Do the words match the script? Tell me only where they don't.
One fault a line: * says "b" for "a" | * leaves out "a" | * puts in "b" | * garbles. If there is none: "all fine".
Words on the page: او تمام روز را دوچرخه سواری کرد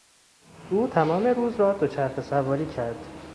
all fine